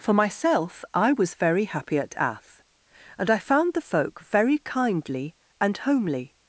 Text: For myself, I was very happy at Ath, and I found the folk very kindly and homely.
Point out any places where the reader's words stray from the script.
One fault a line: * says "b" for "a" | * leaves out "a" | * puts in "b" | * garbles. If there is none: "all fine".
all fine